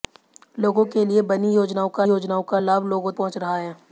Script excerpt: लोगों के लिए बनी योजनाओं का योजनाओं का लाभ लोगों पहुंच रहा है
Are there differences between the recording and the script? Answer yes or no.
no